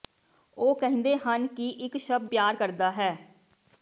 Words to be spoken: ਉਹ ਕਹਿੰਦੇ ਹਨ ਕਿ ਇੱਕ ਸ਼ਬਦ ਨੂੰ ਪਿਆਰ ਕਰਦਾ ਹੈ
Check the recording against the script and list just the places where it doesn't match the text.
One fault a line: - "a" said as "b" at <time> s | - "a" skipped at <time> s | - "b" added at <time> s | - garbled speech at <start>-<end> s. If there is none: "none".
- "ਨੂੰ" skipped at 2.3 s